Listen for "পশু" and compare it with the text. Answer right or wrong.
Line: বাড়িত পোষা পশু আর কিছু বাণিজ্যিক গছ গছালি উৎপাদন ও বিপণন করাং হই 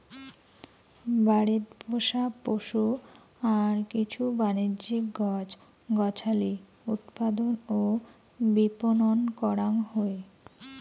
right